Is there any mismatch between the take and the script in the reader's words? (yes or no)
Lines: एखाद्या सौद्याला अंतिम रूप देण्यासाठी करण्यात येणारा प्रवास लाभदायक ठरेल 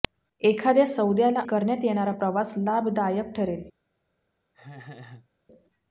yes